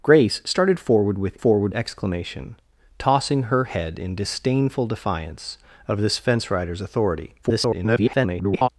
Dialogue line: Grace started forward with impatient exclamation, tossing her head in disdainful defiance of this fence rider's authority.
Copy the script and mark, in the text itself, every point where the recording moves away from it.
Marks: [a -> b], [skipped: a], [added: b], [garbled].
Grace started forward with [impatient -> forward] exclamation, tossing her head in disdainful defiance of this fence rider's authority. [garbled]